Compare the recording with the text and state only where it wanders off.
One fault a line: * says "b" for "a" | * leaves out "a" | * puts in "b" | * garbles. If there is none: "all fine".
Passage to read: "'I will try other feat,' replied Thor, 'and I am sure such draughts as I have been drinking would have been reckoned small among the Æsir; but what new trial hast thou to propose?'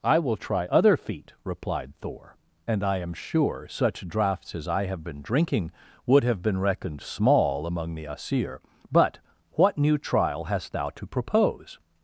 all fine